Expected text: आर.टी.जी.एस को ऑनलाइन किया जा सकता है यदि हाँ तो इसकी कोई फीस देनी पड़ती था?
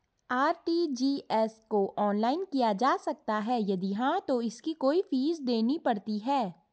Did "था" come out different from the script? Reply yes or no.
yes